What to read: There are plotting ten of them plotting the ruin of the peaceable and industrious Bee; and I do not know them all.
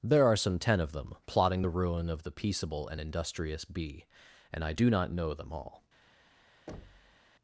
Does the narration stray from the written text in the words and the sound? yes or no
yes